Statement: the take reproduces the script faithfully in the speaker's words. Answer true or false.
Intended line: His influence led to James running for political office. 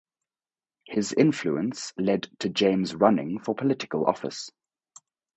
true